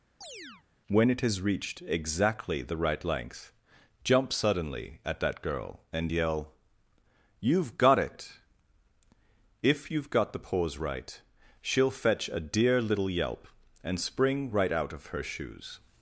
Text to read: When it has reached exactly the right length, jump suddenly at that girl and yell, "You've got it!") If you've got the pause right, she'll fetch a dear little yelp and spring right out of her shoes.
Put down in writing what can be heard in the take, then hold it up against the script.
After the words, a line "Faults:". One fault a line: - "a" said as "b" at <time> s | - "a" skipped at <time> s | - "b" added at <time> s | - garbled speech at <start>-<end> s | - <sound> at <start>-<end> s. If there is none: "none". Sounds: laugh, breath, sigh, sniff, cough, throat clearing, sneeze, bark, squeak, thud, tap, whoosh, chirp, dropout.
When it has reached exactly the right length, jump suddenly at that girl and yell, "You've got it!") If you've got the pause right, she'll fetch a dear little yelp and spring right out of her shoes.
Faults:
- chirp at 0.2-0.6 s